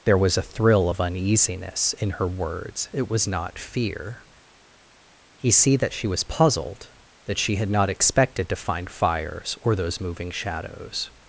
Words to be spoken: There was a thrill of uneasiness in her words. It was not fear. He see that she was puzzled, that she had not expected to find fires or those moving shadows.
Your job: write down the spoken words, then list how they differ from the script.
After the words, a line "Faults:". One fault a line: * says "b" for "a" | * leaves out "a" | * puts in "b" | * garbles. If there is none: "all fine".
There was a thrill of uneasiness in her words. It was not fear. He see that she was puzzled, that she had not expected to find fires or those moving shadows.
Faults:
all fine